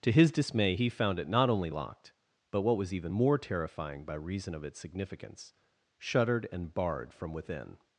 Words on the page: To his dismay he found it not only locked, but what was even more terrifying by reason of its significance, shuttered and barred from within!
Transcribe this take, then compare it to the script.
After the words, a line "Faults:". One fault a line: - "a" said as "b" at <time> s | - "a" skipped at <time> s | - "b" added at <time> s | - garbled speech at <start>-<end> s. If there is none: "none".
To his dismay he found it not only locked, but what was even more terrifying by reason of its significance, shuttered and barred from within!
Faults:
none